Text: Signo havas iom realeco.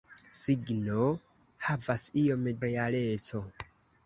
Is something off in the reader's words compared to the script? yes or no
no